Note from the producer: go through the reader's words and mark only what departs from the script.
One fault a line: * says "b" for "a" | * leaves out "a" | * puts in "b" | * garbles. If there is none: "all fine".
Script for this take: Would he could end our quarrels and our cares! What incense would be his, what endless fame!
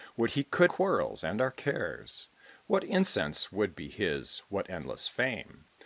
* leaves out "end our"